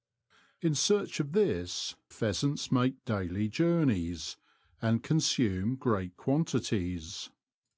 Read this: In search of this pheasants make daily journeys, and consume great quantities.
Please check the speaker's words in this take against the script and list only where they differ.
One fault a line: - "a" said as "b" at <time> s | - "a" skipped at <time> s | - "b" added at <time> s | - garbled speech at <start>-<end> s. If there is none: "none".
none